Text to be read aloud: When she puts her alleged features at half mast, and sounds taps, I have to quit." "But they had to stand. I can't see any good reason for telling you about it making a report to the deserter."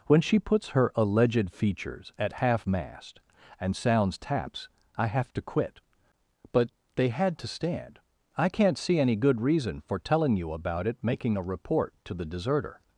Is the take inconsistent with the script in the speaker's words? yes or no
no